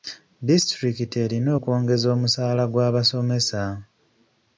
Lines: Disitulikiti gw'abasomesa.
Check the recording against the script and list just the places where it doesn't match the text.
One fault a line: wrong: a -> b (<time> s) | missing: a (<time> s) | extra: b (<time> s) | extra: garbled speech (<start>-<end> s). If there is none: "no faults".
extra: erina okwongeza omusaala (1.2 s)